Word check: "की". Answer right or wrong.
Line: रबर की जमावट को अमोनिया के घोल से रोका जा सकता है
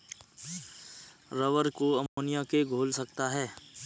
wrong